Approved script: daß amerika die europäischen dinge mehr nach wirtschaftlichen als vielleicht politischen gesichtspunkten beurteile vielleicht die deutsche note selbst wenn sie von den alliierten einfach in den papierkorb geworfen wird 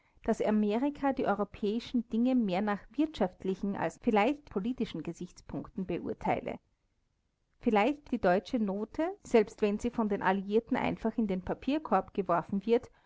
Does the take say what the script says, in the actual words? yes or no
yes